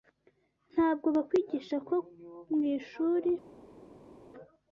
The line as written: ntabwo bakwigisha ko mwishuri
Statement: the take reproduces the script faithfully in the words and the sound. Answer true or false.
true